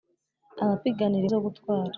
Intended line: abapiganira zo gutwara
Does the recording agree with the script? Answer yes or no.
yes